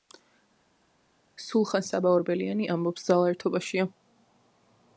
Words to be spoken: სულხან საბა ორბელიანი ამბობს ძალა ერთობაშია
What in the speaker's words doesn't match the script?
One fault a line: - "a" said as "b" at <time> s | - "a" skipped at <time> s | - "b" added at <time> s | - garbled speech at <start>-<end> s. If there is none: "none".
none